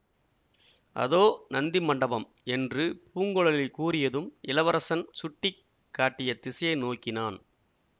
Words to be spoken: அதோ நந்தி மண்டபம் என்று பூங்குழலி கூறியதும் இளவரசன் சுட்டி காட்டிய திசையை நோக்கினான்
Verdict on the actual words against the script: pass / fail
pass